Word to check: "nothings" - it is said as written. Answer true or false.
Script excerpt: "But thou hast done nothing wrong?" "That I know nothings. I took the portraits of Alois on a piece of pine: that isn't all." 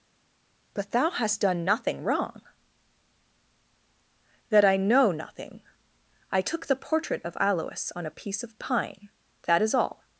false